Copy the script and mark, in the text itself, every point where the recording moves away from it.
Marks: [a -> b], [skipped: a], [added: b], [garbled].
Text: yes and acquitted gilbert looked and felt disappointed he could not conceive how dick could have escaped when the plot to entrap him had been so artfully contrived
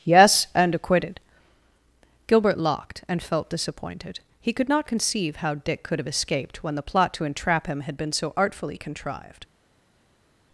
yes and acquitted gilbert [looked -> locked] and felt disappointed he could not conceive how dick could have escaped when the plot to entrap him had been so artfully contrived